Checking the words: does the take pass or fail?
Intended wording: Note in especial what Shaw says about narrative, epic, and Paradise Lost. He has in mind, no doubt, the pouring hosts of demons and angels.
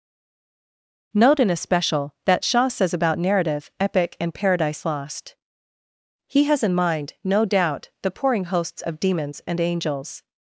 fail